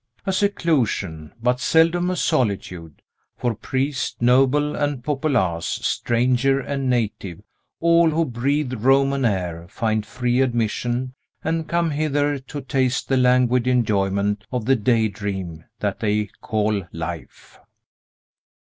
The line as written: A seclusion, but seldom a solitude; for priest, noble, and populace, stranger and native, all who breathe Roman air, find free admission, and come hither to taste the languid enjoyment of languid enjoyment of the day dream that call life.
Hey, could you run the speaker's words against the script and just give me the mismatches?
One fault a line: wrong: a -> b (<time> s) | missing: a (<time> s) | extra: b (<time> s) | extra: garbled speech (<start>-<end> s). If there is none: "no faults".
missing: languid enjoyment of (14.7 s)
extra: they (16.0 s)